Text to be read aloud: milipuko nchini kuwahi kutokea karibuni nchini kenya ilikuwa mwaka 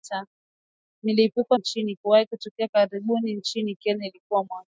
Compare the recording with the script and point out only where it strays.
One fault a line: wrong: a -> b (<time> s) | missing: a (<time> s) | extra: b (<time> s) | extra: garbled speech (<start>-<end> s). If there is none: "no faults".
no faults